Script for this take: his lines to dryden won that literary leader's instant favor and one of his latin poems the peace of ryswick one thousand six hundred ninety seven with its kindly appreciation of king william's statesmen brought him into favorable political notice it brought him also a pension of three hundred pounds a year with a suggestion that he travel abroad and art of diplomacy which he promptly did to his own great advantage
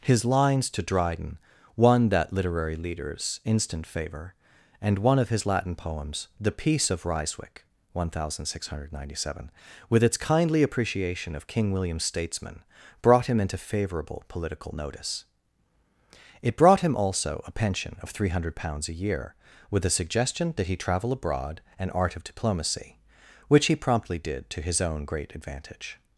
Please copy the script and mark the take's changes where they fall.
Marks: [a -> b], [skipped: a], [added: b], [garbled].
his lines to dryden won that literary leader's instant favor and one of his latin poems the peace of ryswick one thousand six hundred ninety seven with its kindly appreciation of king william's statesmen brought him into favorable political notice it brought him also a pension of three hundred pounds a year with a suggestion that he travel abroad and art of diplomacy which he promptly did to his own great advantage